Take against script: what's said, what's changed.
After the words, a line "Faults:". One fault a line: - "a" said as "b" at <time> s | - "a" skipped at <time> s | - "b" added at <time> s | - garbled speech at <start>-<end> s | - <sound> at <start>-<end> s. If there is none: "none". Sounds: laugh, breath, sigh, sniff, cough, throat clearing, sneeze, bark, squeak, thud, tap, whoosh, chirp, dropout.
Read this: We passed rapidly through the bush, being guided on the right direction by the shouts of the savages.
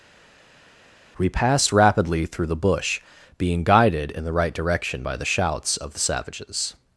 We passed rapidly through the bush, being guided in the right direction by the shouts of the savages.
Faults:
- "on" said as "in" at 4.1 s